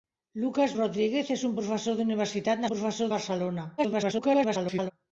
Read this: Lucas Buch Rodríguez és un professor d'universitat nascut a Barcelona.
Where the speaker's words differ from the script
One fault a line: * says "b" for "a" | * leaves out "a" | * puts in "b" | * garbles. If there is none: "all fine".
* leaves out "Buch"
* says "professor" for "nascut"
* garbles